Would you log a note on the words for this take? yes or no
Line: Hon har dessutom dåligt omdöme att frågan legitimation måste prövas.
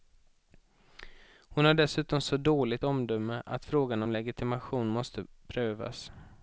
yes